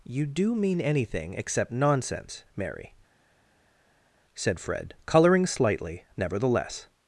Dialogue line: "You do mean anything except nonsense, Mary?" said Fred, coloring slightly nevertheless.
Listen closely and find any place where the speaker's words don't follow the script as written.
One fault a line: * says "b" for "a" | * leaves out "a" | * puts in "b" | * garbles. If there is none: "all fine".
all fine